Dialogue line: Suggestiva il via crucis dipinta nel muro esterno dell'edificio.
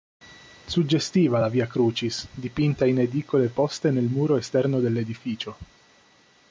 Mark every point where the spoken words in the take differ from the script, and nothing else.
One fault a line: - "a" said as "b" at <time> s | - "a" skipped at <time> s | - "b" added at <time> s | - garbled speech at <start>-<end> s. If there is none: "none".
- "il" said as "la" at 1.4 s
- "in edicole poste" added at 2.9 s